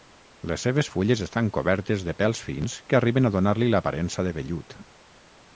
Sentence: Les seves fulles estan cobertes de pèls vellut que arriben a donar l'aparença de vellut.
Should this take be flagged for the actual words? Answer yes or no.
yes